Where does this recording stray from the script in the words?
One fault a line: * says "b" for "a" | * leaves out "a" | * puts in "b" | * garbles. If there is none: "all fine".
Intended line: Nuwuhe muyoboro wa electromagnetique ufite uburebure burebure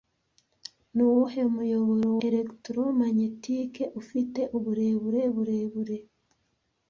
* leaves out "wa"